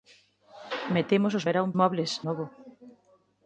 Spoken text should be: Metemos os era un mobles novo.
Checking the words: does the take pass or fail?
pass